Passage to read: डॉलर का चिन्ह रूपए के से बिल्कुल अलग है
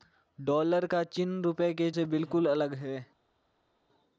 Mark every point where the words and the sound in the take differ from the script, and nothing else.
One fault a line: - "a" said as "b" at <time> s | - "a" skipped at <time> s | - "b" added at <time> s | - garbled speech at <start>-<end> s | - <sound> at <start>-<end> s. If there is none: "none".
none